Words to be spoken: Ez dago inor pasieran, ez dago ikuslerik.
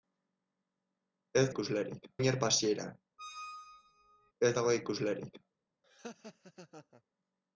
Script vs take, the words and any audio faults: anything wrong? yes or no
yes